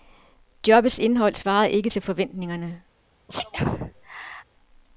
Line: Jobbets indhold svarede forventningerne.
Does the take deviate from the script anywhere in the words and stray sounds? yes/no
yes